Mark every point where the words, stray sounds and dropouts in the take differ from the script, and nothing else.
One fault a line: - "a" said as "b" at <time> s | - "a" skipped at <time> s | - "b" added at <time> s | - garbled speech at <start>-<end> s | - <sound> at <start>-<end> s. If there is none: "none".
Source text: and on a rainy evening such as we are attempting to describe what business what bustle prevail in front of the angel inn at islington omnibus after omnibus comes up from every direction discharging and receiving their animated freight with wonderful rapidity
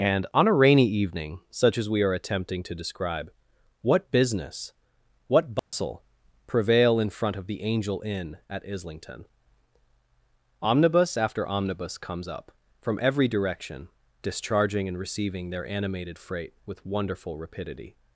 - dropout at 5.6-5.7 s